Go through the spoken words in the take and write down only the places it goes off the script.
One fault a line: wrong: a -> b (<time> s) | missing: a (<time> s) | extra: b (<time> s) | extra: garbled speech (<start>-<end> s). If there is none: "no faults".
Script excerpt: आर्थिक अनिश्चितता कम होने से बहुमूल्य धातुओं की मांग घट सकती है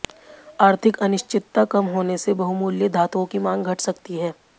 no faults